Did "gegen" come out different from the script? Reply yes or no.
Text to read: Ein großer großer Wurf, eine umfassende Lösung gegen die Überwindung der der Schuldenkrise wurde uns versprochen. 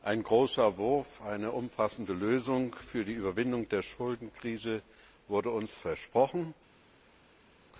yes